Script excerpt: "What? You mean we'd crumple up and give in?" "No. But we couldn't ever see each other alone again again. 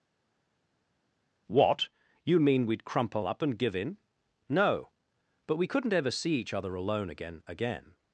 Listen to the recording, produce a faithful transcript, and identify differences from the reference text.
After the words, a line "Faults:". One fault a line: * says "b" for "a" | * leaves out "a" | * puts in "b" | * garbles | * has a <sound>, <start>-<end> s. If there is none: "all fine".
"What? You mean we'd crumple up and give in?" "No. But we couldn't ever see each other alone again again.
Faults:
all fine